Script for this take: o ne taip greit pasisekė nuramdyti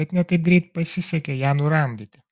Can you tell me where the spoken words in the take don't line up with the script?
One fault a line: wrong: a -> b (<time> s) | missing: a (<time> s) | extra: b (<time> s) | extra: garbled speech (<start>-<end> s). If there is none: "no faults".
wrong: o -> bet (0.0 s)
extra: ją (1.4 s)